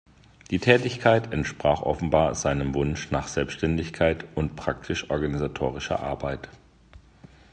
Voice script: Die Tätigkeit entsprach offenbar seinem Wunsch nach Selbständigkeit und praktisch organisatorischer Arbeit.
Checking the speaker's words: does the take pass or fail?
pass